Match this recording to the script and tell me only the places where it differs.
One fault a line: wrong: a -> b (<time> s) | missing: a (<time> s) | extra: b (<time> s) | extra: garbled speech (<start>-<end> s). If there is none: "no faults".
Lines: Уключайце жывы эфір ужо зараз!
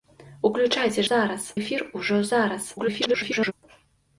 wrong: жывы -> зараз (1.1 s)
extra: garbled speech (2.8-3.5 s)